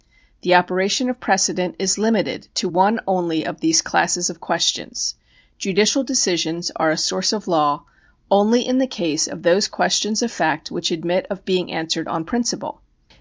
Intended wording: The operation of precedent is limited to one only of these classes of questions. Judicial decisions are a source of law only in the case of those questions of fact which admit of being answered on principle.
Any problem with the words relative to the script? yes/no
no